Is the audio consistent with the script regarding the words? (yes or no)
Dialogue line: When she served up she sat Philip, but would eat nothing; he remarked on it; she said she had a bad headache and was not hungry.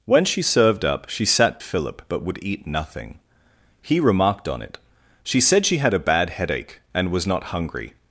yes